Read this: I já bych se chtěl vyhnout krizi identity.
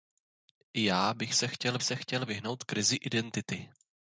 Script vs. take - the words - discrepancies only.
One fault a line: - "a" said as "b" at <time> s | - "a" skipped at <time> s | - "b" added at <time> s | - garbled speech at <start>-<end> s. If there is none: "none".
- "se chtěl" added at 1.8 s